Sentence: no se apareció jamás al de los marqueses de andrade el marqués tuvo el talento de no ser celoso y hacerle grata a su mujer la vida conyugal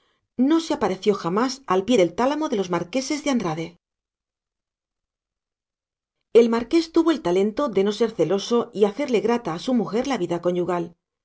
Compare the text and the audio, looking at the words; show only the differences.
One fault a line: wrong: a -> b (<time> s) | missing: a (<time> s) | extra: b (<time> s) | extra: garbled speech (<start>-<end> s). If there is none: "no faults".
extra: pie del tálamo (1.8 s)